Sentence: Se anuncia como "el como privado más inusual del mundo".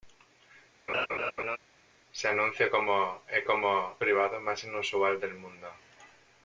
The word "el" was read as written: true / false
true